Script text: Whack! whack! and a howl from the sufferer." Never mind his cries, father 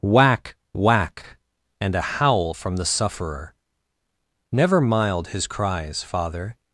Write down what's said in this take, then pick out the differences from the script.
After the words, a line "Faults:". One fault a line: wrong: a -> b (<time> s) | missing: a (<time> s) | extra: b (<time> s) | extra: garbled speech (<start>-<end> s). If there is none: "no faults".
Whack! whack! and a howl from the sufferer." Never mild his cries, father
Faults:
wrong: mind -> mild (4.8 s)